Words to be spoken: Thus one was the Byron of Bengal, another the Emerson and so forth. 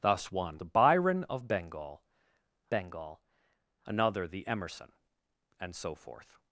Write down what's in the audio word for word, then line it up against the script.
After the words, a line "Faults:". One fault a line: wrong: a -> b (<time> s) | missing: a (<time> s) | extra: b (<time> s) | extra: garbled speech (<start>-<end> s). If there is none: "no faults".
Thus one the Byron of Bengal Bengal, another the Emerson and so forth.
Faults:
missing: was (0.6 s)
extra: Bengal (2.7 s)